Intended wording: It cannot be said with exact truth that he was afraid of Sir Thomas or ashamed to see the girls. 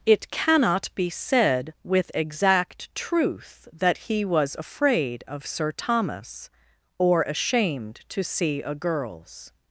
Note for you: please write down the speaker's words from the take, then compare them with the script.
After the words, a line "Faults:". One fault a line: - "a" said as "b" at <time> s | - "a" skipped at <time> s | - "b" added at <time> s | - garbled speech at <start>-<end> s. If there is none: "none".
It cannot be said with exact truth that he was afraid of Sir Thomas or ashamed to see a girls.
Faults:
- "the" said as "a" at 8.6 s